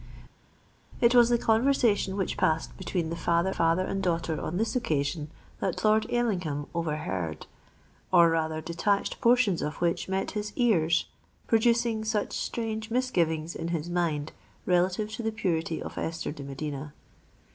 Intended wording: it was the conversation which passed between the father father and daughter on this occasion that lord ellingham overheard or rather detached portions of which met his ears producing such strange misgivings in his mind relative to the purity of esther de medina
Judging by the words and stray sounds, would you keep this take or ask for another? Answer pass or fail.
pass